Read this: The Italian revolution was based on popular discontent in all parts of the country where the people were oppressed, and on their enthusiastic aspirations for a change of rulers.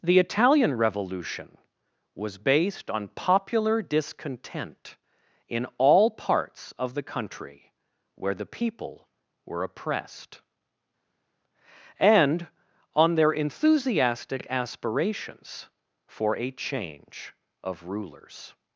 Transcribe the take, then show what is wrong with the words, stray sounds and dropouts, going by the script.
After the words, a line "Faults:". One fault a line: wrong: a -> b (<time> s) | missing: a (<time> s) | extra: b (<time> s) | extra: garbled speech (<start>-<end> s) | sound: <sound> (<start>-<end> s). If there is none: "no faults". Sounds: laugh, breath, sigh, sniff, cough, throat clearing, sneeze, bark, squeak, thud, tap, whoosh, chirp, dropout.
The Italian revolution was based on popular discontent in all parts of the country where the people were oppressed, and on their enthusiastic aspirations for a change of rulers.
Faults:
no faults